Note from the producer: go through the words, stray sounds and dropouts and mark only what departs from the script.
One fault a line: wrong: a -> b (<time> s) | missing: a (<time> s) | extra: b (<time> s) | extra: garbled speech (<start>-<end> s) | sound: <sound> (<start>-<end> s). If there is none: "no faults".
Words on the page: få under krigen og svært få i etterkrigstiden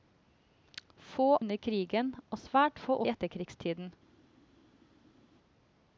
no faults